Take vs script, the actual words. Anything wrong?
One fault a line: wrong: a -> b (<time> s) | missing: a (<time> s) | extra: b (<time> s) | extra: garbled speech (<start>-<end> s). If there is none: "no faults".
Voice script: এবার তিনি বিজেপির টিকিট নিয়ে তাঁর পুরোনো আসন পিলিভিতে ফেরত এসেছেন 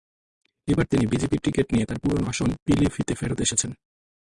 no faults